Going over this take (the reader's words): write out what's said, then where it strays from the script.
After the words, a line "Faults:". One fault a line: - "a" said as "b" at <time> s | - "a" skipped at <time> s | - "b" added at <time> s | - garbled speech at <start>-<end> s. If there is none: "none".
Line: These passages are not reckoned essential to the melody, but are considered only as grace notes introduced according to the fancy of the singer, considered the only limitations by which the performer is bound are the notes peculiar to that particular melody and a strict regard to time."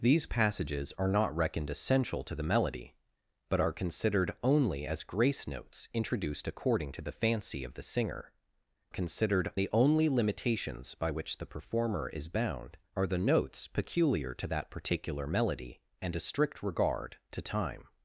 These passages are not reckoned essential to the melody, but are considered only as grace notes introduced according to the fancy of the singer, considered the only limitations by which the performer is bound are the notes peculiar to that particular melody and a strict regard to time."
Faults:
none